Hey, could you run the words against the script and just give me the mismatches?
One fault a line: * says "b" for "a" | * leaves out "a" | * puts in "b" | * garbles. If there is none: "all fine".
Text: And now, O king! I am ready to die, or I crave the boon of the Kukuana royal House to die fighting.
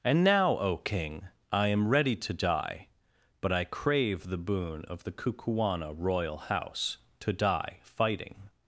* says "but" for "or"